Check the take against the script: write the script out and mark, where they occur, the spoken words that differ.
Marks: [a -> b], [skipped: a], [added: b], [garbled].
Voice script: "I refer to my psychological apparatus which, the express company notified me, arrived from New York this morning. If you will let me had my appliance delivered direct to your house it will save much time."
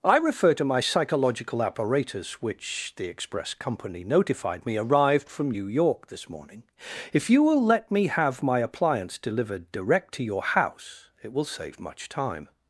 "I refer to my psychological apparatus which, the express company notified me, arrived from New York this morning. If you will let me [had -> have] my appliance delivered direct to your house it will save much time."